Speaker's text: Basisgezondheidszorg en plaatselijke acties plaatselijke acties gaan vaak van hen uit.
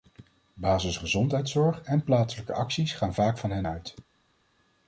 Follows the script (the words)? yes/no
no